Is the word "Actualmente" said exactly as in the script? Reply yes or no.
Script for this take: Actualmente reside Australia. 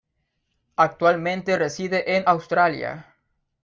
yes